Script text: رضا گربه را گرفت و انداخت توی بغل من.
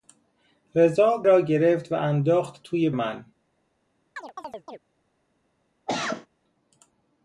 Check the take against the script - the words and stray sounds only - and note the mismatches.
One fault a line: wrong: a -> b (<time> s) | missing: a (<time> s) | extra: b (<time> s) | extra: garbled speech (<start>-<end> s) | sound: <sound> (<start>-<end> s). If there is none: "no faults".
missing: گربه (1.2 s)
missing: بغل (2.9 s)
sound: chirp (4.2-4.8 s)
sound: cough (5.9-6.3 s)